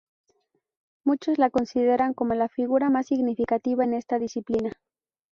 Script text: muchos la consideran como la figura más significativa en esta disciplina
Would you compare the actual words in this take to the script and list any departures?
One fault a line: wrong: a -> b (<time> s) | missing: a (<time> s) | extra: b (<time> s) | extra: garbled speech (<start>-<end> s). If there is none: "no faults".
no faults